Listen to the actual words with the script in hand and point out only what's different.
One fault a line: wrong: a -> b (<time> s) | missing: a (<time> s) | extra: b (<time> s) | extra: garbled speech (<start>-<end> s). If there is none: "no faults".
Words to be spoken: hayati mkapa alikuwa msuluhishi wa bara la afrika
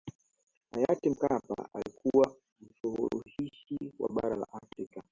no faults